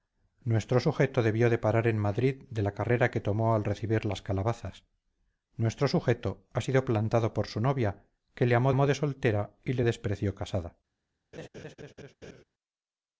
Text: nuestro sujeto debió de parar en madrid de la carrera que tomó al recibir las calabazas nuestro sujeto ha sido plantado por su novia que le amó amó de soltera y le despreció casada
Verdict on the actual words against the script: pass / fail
pass